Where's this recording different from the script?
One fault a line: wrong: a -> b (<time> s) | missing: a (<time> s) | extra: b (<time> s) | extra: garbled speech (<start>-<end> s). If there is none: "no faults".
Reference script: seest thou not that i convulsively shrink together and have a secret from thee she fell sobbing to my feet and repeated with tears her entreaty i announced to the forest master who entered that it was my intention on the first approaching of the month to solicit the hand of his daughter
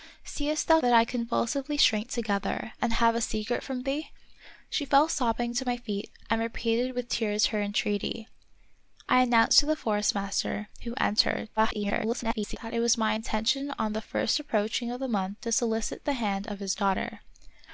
missing: not (0.8 s)
extra: garbled speech (11.6-12.6 s)